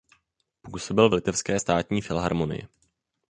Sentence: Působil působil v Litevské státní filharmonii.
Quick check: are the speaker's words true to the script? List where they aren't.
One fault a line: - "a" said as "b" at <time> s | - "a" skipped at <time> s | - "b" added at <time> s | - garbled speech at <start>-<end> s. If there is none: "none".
- "působil" skipped at 1.1 s